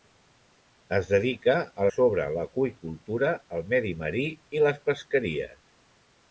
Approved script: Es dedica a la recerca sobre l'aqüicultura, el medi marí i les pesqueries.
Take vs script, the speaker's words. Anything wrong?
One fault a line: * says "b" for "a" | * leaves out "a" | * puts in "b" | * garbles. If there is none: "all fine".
* leaves out "la recerca"